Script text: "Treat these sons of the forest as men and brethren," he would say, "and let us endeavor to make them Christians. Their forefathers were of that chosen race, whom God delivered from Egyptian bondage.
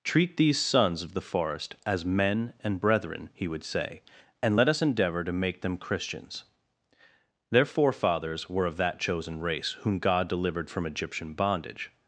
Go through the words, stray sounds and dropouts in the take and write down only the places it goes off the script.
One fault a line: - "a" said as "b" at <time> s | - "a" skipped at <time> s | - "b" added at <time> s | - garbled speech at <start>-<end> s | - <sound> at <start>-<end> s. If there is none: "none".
none